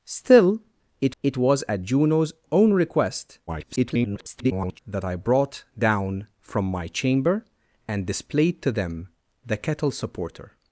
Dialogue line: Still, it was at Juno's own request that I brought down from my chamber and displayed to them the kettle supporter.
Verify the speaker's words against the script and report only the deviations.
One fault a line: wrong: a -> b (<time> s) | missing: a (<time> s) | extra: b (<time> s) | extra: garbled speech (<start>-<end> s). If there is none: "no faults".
extra: it (1.2 s)
extra: garbled speech (3.5-4.8 s)